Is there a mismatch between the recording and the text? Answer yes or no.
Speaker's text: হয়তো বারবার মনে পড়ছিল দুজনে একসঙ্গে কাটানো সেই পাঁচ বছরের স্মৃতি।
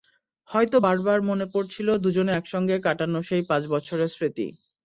no